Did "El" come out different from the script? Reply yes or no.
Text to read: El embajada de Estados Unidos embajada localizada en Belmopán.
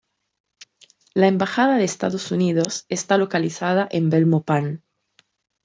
yes